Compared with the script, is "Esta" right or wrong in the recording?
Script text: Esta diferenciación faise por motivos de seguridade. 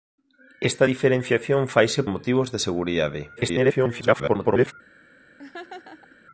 right